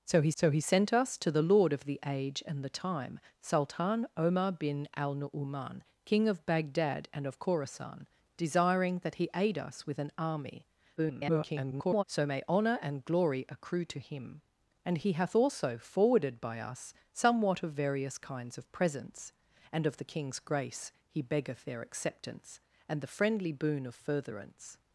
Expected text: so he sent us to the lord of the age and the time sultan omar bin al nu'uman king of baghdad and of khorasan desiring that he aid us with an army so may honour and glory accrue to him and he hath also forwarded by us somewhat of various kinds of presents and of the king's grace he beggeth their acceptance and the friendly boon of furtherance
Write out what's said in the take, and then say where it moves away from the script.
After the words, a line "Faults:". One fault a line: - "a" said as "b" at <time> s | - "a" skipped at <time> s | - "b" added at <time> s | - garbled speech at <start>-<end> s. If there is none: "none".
so he so he sent us to the lord of the age and the time sultan omar bin al nu'uman king of baghdad and of khorasan desiring that he aid us with an army [garbled] so may honour and glory accrue to him and he hath also forwarded by us somewhat of various kinds of presents and of the king's grace he beggeth their acceptance and the friendly boon of furtherance
Faults:
- "so he" added at 0.3 s
- garbled speech at 11.0-12.0 s